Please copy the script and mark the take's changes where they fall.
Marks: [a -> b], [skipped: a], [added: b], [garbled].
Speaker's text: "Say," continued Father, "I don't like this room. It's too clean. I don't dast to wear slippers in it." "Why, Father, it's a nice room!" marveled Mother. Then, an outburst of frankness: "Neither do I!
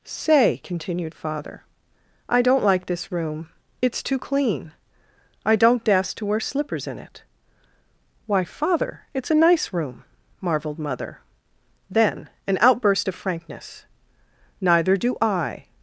"Say," continued Father, "I don't like this room. It's too clean. I don't dast to wear slippers in it." "Why, Father, it's a nice room!" marveled Mother. Then, an outburst of frankness: "Neither do I!